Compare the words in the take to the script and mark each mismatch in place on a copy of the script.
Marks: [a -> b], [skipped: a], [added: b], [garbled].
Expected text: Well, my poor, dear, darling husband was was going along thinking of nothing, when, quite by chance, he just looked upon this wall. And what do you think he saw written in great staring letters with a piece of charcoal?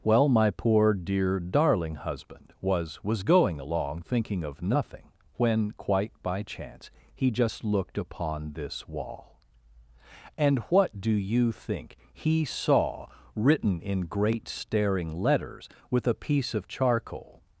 Well, my poor, dear, darling husband was was going along thinking of nothing, when, quite by chance, he just looked upon this wall. And what do you think he saw written in great staring letters with a piece of charcoal?